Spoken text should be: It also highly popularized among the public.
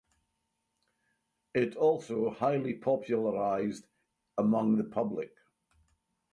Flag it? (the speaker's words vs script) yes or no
no